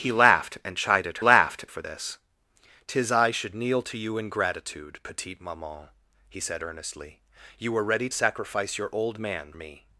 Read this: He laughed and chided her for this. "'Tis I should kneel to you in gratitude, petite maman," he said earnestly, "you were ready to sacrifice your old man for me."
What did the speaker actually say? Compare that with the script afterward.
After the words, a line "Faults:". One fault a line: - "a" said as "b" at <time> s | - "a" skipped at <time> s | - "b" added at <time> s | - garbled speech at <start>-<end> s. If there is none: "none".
He laughed and chided laughed for this. "'Tis I should kneel to you in gratitude, petite maman," he said earnestly, "you were ready sacrifice your old man me."
Faults:
- "her" said as "laughed" at 1.2 s
- "to" skipped at 8.1 s
- "for" skipped at 9.5 s